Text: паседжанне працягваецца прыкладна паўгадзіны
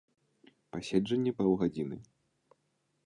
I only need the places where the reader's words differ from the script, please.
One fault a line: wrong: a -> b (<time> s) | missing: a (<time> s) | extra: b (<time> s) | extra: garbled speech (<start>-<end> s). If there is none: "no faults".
missing: працягваецца прыкладна (1.3 s)